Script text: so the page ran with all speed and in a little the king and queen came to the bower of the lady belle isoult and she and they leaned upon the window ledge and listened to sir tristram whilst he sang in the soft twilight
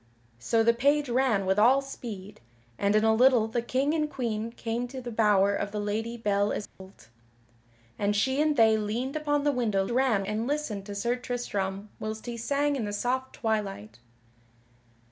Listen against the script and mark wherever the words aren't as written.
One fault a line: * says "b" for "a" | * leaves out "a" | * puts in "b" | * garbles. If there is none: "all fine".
* says "ran" for "ledge"